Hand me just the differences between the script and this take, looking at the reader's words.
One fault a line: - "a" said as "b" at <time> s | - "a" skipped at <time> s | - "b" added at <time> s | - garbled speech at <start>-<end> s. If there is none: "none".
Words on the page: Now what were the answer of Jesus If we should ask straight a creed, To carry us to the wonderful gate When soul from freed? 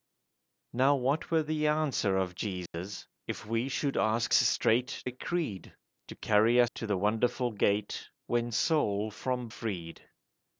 none